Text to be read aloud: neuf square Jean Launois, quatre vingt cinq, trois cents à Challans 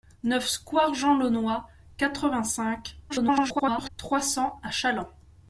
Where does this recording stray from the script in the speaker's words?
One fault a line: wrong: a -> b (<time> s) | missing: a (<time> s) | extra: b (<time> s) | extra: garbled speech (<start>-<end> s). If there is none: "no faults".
extra: garbled speech (3.1-3.9 s)